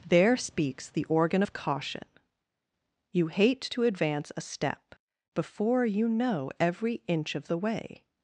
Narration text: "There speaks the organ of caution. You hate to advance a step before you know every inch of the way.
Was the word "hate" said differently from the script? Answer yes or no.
no